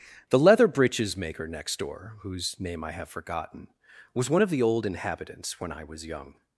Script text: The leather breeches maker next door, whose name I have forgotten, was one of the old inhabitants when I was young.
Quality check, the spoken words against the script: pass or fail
pass